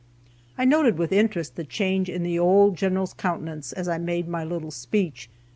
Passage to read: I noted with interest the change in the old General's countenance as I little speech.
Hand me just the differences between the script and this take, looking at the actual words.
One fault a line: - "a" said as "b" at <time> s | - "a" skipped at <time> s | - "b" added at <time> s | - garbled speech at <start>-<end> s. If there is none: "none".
- "made my" added at 4.0 s